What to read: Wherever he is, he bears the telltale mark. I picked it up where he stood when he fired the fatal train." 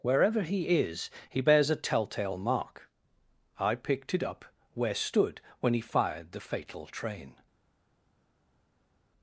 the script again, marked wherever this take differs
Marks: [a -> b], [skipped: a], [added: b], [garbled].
Wherever he is, he bears [the -> a] telltale mark. I picked it up where [skipped: he] stood when he fired the fatal train."